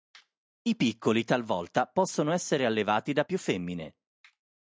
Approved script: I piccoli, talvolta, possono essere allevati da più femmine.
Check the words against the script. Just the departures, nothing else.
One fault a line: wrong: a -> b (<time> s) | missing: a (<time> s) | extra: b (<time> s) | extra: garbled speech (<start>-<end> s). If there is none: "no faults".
no faults